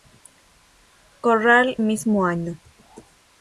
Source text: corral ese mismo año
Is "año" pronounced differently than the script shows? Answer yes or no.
no